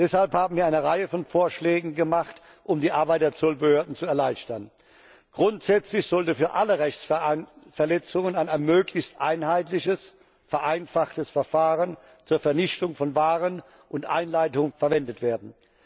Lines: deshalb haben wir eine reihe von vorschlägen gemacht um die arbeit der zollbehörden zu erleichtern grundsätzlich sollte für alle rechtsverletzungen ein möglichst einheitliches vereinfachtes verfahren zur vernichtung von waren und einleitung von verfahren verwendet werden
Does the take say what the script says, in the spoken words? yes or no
no